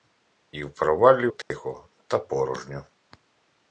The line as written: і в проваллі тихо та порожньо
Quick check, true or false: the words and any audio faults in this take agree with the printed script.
false